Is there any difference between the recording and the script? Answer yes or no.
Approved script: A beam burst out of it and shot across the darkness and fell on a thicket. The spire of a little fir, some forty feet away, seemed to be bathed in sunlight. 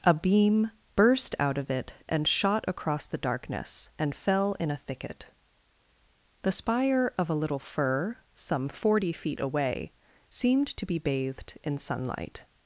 yes